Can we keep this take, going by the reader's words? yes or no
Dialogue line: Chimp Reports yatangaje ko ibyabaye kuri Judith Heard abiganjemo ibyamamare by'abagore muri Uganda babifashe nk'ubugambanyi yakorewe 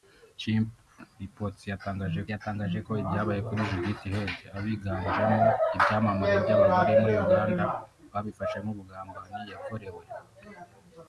no